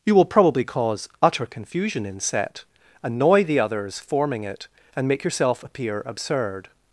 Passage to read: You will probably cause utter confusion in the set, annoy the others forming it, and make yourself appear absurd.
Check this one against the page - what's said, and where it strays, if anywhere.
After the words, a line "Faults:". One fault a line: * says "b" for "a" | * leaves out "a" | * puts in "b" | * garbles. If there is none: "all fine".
You will probably cause utter confusion in set, annoy the others forming it, and make yourself appear absurd.
Faults:
* leaves out "the"